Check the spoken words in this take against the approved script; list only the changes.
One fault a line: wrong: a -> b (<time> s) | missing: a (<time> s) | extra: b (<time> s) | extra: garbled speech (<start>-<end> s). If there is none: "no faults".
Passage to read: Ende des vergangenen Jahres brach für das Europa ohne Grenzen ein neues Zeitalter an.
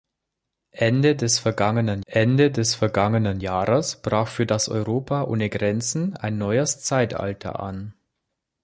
extra: ende des vergangenen (2.1 s)